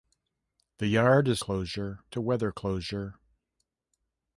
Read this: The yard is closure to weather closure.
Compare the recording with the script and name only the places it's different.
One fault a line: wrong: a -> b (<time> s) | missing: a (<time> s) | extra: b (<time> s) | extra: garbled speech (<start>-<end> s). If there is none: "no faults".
no faults